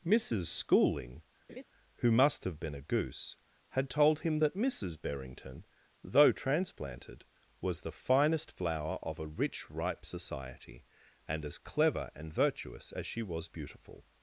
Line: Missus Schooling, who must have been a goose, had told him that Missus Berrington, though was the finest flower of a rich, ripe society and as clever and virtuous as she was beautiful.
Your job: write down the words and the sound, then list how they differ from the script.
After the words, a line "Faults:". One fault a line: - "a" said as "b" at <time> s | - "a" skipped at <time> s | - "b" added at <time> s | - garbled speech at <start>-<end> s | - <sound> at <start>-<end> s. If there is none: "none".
Missus Schooling, who must have been a goose, had told him that Missus Berrington, though transplanted, was the finest flower of a rich, ripe society and as clever and virtuous as she was beautiful.
Faults:
- laugh at 1.5-1.6 s
- "transplanted" added at 6.3 s